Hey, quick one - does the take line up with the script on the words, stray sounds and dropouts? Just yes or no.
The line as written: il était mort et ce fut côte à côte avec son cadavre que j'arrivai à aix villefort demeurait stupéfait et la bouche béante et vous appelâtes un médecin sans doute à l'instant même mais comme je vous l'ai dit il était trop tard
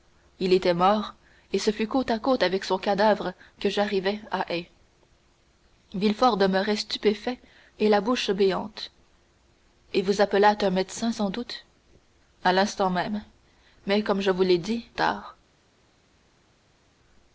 no